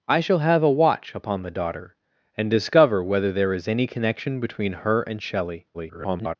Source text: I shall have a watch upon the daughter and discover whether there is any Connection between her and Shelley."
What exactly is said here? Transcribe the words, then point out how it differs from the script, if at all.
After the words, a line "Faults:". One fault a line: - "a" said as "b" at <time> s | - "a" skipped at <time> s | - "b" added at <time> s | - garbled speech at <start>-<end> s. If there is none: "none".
I shall have a watch upon the daughter and discover whether there is any Connection between her and Shelley." [garbled]
Faults:
- garbled speech at 5.7-6.4 s